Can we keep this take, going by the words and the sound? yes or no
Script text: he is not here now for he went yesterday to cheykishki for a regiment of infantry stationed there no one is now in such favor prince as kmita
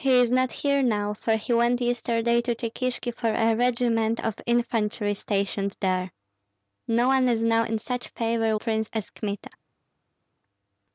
yes